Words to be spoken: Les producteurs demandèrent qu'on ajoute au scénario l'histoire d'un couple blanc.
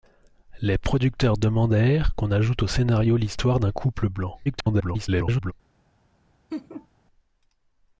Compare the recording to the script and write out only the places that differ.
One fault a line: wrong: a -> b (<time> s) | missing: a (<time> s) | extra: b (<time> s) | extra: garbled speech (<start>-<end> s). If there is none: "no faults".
extra: garbled speech (4.4-5.5 s)